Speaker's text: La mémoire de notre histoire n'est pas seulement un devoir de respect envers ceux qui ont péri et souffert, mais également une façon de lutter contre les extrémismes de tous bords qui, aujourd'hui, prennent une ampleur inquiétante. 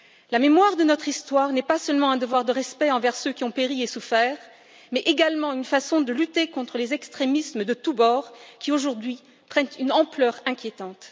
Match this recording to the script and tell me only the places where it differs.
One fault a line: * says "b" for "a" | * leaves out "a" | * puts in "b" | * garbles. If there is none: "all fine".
all fine